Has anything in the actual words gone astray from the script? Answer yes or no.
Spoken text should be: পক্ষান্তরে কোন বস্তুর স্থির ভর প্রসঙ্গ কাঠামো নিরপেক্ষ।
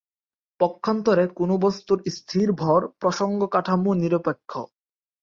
no